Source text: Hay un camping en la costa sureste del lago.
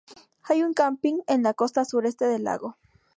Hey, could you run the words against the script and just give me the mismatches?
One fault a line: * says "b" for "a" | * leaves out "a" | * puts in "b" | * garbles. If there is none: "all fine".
all fine